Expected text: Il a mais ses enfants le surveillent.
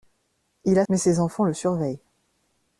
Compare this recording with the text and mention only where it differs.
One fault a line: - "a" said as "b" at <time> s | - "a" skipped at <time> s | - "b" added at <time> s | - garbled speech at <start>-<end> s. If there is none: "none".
none